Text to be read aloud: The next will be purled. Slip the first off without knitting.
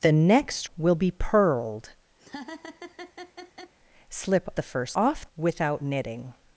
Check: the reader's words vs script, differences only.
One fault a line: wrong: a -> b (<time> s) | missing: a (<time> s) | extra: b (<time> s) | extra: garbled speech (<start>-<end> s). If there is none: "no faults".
no faults